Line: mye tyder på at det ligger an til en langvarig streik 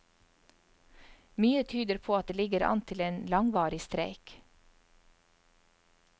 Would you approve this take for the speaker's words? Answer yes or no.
yes